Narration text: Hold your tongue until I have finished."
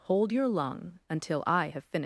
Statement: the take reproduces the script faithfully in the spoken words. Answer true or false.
false